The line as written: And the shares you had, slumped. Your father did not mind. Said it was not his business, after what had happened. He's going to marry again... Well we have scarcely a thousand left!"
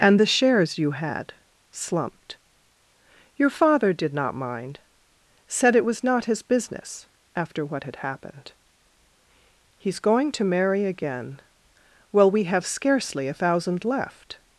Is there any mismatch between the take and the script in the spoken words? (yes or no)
no